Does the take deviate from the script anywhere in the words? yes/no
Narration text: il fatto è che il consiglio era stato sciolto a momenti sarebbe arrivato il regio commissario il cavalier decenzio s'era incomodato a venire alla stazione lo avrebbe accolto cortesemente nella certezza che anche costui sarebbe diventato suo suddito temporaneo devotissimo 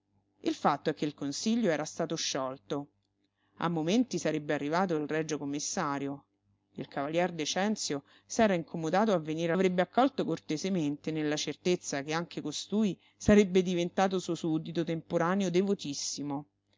yes